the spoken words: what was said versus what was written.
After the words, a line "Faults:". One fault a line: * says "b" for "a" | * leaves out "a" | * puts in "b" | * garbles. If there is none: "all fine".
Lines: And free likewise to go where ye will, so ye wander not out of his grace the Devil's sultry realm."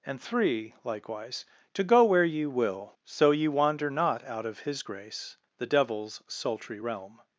And three likewise to go where ye will, so ye wander not out of his grace the Devil's sultry realm."
Faults:
* says "three" for "free"